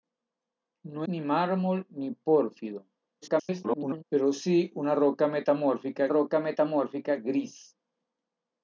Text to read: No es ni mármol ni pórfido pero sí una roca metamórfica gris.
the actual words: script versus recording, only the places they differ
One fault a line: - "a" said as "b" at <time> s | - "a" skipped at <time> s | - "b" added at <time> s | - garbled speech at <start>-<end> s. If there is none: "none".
- "es" skipped at 1.1 s
- garbled speech at 3.2-4.0 s
- "roca metamórfica" added at 6.1 s